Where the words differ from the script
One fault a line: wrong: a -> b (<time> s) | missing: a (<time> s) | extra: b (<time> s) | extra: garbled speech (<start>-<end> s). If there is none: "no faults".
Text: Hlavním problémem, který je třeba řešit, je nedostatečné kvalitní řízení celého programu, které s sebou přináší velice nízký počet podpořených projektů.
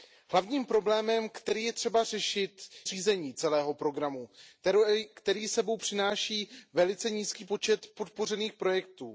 missing: je nedostatečné kvalitní (2.7 s)